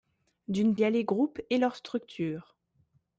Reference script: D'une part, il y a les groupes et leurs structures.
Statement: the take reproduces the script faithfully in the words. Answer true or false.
false